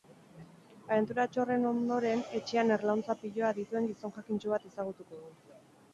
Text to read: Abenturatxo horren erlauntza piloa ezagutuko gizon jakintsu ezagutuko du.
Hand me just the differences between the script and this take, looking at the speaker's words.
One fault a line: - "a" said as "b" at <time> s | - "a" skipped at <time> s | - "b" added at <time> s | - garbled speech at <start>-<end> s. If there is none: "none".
- "ondoren etxean" added at 1.7 s
- "ezagutuko" said as "dituen" at 3.6 s
- "bat" added at 4.5 s